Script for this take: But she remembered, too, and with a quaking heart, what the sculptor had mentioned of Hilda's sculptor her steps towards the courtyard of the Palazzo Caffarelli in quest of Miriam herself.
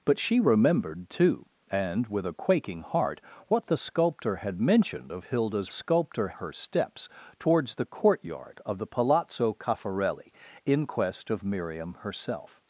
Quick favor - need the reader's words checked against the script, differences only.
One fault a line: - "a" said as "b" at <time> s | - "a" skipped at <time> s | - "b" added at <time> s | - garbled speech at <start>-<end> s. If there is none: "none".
none